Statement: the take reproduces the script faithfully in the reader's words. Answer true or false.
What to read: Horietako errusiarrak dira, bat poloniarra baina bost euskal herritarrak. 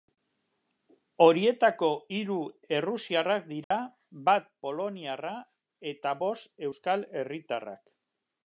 false